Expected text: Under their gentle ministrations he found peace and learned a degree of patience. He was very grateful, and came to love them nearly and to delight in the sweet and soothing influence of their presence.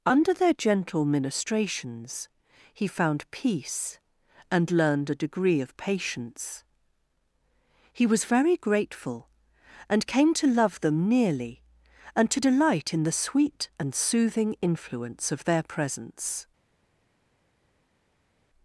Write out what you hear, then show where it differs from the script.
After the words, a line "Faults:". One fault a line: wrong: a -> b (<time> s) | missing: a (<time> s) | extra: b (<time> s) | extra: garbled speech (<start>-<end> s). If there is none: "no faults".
Under their gentle ministrations he found peace and learned a degree of patience. He was very grateful, and came to love them nearly and to delight in the sweet and soothing influence of their presence.
Faults:
no faults